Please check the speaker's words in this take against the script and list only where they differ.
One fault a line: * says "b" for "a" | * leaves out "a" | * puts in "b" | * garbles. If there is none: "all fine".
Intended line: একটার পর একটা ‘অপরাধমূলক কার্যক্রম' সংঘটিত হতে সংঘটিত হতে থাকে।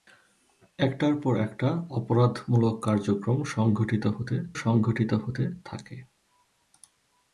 all fine